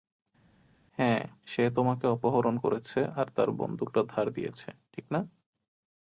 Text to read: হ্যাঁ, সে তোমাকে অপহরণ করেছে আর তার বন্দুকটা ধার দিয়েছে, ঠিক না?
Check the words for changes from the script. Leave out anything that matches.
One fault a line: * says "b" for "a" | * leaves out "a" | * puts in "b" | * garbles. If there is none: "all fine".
all fine